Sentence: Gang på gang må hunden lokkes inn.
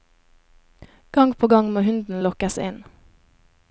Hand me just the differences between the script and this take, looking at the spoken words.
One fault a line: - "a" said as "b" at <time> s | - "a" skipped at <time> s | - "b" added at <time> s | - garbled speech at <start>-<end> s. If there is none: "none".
none